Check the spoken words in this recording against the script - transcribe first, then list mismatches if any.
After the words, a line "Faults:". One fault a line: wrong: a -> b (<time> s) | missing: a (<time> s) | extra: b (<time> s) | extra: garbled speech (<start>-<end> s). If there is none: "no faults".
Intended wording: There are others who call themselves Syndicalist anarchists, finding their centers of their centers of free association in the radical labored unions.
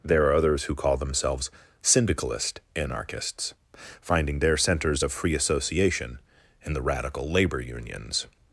There are others who call themselves Syndicalist anarchists, finding their centers of free association in the radical labor unions.
Faults:
missing: their centers of (5.1 s)
wrong: labored -> labor (7.3 s)